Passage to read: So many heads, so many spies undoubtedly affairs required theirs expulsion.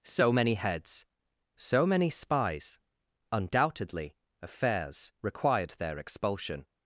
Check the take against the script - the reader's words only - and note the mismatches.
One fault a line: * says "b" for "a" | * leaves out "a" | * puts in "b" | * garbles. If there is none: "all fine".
* says "their" for "theirs"